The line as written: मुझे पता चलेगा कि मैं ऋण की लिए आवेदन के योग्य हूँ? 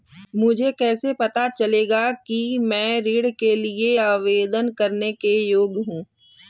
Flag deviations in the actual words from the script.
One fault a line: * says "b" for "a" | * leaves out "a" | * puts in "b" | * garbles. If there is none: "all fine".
* puts in "कैसे"
* says "के" for "की"
* puts in "करने"